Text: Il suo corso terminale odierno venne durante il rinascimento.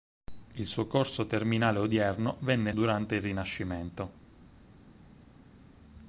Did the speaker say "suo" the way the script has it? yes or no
yes